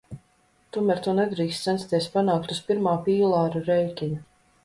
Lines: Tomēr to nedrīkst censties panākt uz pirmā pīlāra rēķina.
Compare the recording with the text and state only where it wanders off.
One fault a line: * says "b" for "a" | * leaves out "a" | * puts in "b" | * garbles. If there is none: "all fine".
all fine